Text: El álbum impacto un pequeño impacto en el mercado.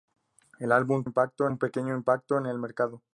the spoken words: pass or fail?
pass